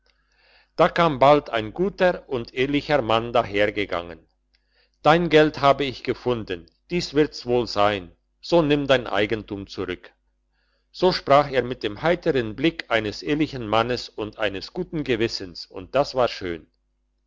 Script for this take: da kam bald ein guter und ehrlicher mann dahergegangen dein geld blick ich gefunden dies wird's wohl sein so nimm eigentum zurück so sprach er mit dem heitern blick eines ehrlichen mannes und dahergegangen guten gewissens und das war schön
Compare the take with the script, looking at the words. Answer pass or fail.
fail